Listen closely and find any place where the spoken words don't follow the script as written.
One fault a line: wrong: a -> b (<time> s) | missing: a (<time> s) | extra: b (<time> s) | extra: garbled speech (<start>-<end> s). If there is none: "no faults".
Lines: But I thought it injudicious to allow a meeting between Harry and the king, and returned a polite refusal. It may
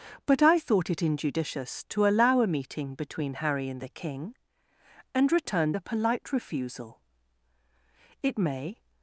no faults